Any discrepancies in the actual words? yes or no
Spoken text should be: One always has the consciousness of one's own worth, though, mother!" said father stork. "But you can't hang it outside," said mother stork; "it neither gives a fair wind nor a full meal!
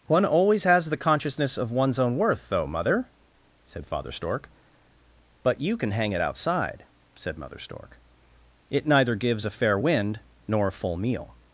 yes